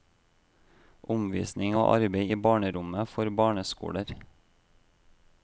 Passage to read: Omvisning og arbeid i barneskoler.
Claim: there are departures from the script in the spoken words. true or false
true